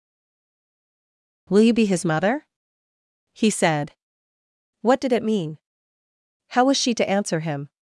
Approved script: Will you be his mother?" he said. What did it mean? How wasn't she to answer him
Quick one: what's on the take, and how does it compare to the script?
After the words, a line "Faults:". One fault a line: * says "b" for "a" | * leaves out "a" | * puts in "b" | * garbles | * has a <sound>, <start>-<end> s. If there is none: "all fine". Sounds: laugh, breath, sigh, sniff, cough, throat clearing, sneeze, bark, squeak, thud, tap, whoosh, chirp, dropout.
Will you be his mother?" he said. What did it mean? How was she to answer him
Faults:
* says "was" for "wasn't"